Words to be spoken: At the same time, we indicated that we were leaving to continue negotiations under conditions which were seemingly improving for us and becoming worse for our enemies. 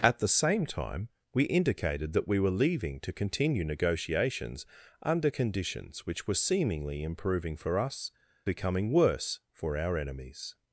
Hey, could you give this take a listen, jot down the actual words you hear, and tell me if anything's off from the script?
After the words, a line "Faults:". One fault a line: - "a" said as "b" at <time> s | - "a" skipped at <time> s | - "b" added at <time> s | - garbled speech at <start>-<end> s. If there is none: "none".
At the same time, we indicated that we were leaving to continue negotiations under conditions which were seemingly improving for us becoming worse for our enemies.
Faults:
- "and" skipped at 8.1 s